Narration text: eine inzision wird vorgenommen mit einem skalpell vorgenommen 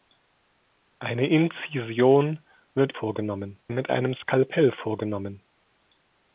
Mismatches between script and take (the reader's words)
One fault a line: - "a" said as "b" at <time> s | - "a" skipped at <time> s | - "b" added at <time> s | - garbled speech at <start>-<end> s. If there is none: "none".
none